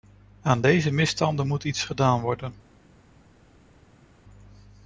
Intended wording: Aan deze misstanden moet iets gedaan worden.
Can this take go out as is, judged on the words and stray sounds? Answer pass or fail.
pass